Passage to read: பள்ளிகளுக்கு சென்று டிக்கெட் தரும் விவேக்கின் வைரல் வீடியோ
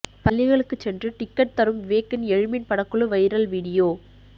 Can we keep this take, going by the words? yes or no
no